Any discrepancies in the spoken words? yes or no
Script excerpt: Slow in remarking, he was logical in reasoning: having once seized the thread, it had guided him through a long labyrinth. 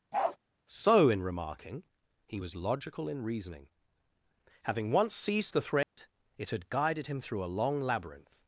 yes